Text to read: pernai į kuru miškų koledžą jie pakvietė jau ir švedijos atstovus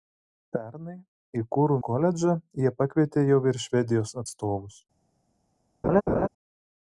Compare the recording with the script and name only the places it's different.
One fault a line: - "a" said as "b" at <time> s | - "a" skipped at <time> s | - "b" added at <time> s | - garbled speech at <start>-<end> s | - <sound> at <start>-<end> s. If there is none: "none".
- "miškų" skipped at 1.8 s
- laugh at 5.8-6.3 s